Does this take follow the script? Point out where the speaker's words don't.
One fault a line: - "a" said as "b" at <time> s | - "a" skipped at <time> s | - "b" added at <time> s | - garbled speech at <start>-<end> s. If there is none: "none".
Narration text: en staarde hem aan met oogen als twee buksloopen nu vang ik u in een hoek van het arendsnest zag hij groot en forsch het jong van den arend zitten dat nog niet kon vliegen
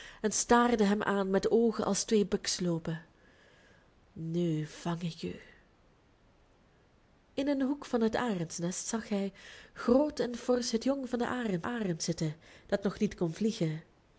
- "arend" added at 11.6 s